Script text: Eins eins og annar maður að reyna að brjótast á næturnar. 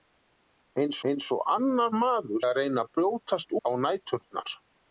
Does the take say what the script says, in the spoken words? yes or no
yes